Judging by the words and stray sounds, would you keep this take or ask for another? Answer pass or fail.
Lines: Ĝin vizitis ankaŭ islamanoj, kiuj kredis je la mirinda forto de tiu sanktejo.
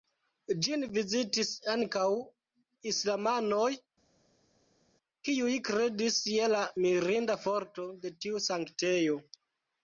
pass